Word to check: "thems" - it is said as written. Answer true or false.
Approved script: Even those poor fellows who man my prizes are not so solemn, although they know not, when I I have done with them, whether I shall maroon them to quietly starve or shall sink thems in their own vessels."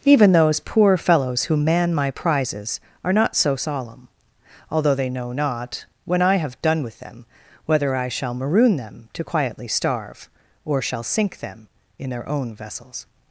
false